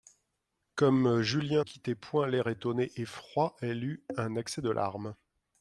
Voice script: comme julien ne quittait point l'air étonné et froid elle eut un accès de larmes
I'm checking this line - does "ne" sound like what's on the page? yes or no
no